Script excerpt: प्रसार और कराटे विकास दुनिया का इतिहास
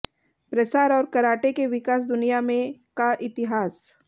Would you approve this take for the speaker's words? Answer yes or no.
no